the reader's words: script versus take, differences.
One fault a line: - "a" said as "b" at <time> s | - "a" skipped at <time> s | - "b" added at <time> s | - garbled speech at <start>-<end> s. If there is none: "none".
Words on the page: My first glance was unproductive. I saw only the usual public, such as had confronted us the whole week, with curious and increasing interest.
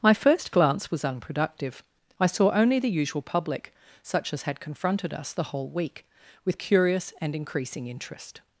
none